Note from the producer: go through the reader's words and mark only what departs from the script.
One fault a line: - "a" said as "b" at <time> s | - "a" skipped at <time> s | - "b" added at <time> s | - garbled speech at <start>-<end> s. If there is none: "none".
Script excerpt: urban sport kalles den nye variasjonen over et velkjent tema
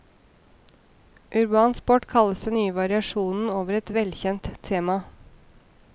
none